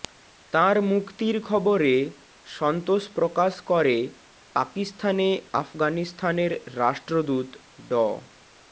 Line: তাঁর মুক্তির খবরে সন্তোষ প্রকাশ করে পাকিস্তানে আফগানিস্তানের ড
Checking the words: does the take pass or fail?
fail